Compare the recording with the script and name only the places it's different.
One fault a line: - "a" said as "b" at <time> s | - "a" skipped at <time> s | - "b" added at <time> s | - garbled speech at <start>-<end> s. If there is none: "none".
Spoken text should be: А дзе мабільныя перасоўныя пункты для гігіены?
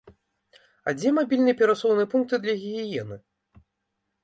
none